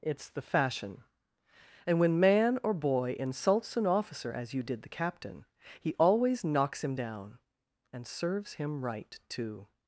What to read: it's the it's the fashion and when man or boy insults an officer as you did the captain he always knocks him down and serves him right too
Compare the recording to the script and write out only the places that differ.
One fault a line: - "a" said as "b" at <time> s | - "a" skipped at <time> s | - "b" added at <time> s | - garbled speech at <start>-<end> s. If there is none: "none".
- "it's the" skipped at 0.4 s